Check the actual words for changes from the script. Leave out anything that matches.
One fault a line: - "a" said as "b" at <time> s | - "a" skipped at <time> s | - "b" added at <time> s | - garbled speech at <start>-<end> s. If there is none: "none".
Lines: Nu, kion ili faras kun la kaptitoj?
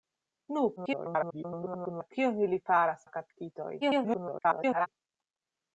- garbled speech at 0.8-2.1 s
- "kun" skipped at 3.0 s
- garbled speech at 3.8-4.9 s